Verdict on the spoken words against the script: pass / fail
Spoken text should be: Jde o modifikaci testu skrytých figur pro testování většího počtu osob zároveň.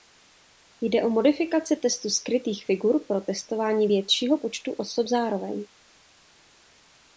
pass